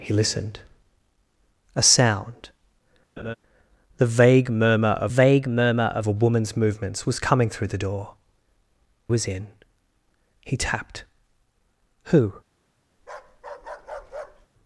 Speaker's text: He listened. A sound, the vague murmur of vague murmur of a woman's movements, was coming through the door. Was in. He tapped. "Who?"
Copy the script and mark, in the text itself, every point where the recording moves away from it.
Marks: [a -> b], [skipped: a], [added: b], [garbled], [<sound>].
He listened. A sound, [laugh] the vague murmur of vague murmur of a woman's movements, was coming through the door. Was in. He tapped. "Who?" [bark]